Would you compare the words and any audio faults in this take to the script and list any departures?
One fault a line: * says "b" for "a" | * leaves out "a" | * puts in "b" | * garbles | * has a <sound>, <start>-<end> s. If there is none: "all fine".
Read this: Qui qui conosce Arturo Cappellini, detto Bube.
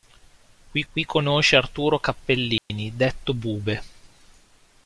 * has a dropout, 2.6-2.7 s